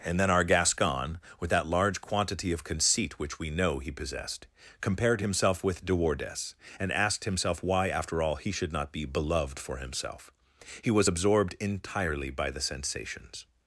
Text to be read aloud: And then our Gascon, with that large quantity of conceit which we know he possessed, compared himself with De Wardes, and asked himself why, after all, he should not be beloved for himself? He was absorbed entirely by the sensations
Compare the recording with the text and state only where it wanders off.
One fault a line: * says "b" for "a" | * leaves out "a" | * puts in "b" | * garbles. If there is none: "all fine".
all fine